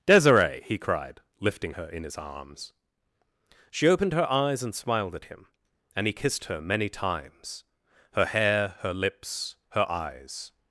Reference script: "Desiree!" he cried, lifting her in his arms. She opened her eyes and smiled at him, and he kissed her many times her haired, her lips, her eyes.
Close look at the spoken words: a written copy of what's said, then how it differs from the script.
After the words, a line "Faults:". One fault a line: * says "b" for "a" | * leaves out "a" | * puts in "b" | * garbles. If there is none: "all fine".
"Desiree!" he cried, lifting her in his arms. She opened her eyes and smiled at him, and he kissed her many times her hair, her lips, her eyes.
Faults:
* says "hair" for "haired"